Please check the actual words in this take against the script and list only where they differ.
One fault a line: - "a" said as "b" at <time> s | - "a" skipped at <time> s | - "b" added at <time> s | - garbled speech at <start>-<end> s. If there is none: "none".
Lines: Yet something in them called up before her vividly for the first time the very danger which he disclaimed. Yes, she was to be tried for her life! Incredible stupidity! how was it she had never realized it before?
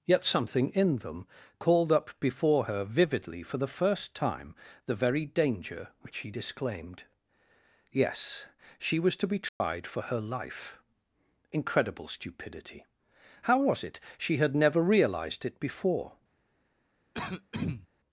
none